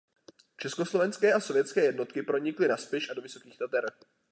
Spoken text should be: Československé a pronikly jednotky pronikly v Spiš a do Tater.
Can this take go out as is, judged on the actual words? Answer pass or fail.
fail